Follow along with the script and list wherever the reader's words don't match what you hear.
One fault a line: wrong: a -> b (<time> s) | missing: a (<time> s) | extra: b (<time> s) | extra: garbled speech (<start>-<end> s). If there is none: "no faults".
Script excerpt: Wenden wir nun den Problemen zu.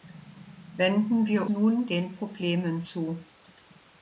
no faults